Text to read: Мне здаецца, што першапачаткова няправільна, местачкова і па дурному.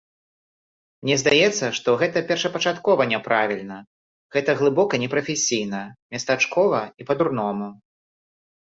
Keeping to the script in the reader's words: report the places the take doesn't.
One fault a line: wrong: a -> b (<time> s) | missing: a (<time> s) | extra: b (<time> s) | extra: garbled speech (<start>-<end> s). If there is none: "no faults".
extra: гэта (2.0 s)
extra: гэта глыбока непрафесійна (4.4 s)